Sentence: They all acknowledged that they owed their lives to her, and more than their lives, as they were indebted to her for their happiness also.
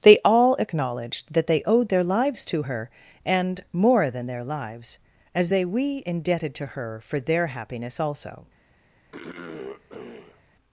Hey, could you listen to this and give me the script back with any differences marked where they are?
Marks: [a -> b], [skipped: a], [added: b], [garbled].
They all acknowledged that they owed their lives to her, and more than their lives, as they [were -> we] indebted to her for their happiness also.